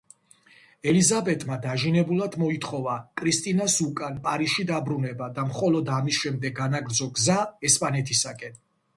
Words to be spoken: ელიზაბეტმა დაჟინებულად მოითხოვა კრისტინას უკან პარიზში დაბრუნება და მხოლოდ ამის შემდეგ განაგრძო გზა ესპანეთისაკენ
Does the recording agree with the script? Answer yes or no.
yes